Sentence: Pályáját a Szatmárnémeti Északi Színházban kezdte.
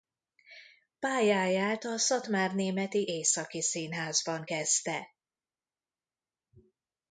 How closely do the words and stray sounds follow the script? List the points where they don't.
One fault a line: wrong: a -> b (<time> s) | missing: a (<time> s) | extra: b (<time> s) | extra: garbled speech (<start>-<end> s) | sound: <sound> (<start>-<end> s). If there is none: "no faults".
no faults